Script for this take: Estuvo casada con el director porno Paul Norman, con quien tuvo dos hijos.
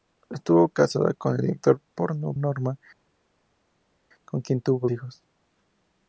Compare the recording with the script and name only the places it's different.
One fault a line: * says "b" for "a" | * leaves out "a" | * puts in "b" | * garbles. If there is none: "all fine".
* leaves out "Paul"
* leaves out "dos"